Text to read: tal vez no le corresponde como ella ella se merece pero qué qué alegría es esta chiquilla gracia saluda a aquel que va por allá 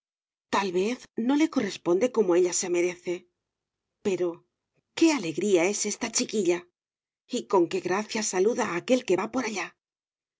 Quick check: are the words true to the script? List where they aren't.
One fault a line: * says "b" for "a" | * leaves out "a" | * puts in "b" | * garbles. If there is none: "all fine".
* leaves out "ella"
* leaves out "qué"
* puts in "y con qué"